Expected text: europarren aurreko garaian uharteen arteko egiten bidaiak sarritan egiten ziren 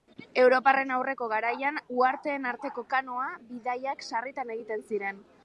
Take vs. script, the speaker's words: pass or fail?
fail